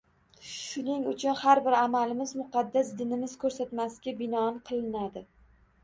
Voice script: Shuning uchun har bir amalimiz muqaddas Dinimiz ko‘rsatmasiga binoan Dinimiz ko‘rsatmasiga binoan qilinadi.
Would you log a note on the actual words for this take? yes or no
yes